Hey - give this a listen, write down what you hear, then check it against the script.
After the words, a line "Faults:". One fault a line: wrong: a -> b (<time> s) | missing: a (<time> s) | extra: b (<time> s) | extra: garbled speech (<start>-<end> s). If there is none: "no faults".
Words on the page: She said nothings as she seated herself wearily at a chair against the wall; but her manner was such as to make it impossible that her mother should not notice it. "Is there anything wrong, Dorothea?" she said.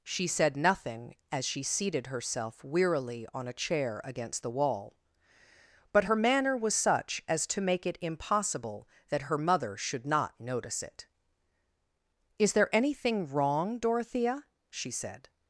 She said nothing as she seated herself wearily on a chair against the wall; but her manner was such as to make it impossible that her mother should not notice it. "Is there anything wrong, Dorothea?" she said.
Faults:
wrong: nothings -> nothing (0.6 s)
wrong: at -> on (3.3 s)